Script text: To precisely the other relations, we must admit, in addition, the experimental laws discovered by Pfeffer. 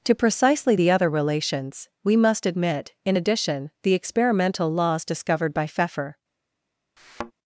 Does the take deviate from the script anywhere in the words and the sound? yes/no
yes